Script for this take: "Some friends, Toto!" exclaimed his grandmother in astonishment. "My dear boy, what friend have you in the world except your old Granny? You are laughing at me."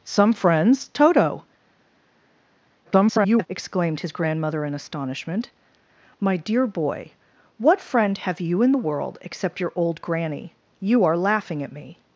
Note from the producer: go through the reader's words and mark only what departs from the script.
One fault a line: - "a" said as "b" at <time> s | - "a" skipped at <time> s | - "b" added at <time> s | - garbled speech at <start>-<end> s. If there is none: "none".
- garbled speech at 2.8-3.5 s